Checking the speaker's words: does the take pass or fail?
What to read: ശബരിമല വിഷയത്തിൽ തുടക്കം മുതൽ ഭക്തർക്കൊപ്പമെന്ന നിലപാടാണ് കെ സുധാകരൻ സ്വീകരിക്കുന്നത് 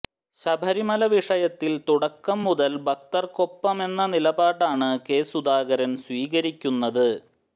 pass